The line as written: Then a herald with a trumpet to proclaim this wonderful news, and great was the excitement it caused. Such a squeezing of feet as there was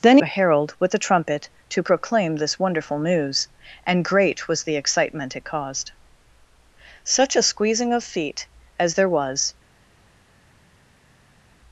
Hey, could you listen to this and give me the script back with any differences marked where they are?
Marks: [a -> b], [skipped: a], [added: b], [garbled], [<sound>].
Then a herald with a trumpet to proclaim this wonderful news, and great was the excitement it caused. Such a squeezing of feet as there was